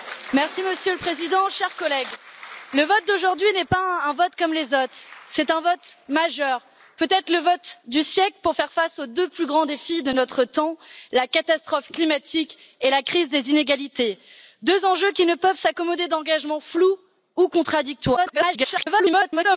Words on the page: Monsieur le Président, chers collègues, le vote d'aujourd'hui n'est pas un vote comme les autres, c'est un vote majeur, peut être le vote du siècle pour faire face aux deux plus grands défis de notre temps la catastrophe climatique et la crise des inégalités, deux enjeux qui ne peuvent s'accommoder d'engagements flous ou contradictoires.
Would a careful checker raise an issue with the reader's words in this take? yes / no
yes